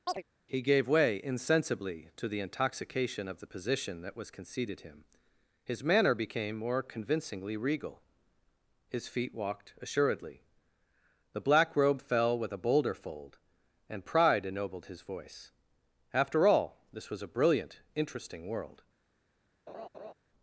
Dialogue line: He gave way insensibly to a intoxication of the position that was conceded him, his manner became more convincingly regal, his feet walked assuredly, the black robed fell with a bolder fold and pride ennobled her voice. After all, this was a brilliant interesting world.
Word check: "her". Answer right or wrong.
wrong